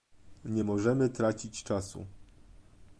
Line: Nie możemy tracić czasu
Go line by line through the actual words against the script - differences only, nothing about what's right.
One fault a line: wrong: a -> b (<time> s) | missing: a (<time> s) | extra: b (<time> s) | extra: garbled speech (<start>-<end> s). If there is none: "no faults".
no faults